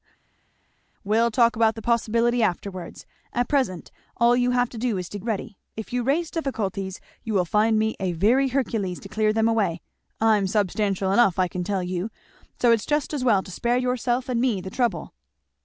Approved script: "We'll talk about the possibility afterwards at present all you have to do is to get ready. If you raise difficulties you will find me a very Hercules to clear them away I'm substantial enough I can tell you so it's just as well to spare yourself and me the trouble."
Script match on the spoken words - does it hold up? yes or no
no